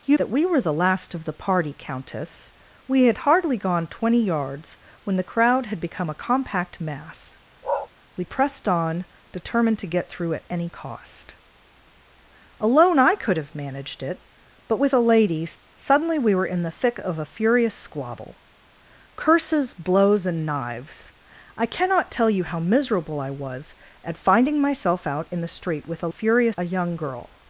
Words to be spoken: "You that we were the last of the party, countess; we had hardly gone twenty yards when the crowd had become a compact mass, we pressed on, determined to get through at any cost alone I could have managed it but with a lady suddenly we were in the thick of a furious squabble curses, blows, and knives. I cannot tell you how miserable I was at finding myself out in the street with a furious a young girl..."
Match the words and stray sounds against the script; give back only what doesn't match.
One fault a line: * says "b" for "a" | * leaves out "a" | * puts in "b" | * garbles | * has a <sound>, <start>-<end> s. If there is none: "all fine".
* has a bark, 7.6-7.9 s